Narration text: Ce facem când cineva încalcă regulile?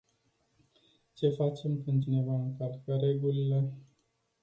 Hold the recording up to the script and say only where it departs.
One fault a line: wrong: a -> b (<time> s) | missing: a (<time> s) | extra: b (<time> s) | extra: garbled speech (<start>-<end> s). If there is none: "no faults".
no faults